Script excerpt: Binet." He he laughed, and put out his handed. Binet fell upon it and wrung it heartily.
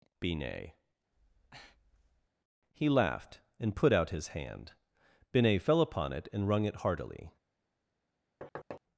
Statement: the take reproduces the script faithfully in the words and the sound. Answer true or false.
false